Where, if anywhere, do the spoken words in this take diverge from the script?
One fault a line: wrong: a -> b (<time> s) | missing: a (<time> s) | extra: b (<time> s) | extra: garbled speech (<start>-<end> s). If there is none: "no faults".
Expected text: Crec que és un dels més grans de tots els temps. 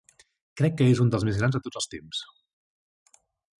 no faults